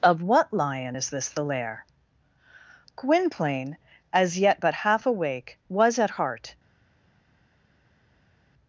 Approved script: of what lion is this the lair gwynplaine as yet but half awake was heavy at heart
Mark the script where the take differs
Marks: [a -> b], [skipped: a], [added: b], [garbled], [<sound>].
of what lion is this the lair gwynplaine as yet but half awake was [skipped: heavy] at heart